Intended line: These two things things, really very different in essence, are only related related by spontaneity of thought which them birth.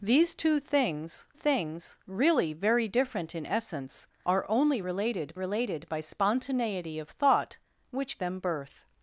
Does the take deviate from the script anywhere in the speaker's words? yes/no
no